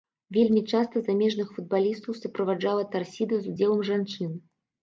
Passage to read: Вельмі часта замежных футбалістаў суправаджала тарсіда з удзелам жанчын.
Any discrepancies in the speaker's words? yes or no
no